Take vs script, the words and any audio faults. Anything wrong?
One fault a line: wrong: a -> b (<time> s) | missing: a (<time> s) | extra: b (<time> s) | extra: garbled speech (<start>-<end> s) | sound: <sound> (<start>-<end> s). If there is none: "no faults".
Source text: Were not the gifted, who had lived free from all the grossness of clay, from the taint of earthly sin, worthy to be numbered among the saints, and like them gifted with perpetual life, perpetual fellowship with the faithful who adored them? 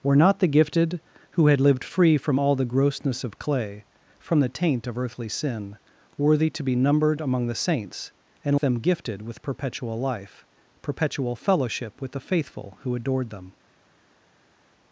missing: like (8.6 s)